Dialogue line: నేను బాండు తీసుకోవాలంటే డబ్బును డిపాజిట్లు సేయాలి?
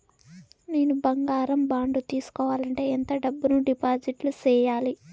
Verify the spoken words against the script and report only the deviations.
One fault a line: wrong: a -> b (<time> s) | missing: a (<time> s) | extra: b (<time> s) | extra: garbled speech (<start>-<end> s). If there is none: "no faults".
extra: బంగారం (1.0 s)
extra: ఎంత (2.9 s)